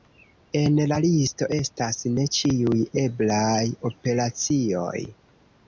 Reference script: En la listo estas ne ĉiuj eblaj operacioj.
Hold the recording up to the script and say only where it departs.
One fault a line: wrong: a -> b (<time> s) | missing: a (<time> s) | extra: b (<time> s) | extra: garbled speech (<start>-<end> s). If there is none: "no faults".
no faults